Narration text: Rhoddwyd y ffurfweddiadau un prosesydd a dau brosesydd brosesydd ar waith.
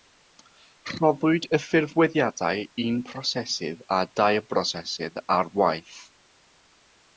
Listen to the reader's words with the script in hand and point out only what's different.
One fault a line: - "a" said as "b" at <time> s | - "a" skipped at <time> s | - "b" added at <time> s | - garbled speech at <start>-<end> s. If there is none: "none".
- "brosesydd" skipped at 5.2 s